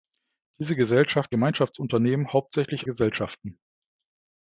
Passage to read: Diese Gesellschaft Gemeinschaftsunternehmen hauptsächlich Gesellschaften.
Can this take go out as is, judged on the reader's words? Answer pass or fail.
pass